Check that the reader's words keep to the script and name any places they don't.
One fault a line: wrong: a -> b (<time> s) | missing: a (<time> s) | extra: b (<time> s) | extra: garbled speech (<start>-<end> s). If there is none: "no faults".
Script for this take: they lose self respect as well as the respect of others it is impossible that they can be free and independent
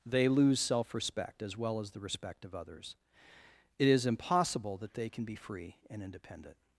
no faults